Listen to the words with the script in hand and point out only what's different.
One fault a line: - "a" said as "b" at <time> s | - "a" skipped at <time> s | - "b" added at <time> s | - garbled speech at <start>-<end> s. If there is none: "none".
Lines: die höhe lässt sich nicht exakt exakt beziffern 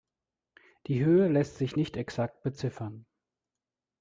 - "exakt" skipped at 2.4 s